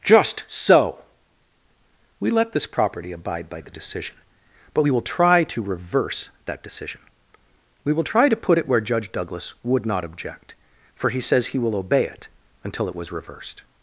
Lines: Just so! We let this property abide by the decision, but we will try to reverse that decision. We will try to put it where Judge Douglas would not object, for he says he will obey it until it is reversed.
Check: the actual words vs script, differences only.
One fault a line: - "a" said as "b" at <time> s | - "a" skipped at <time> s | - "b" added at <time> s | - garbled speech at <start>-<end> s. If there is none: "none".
- "is" said as "was" at 12.9 s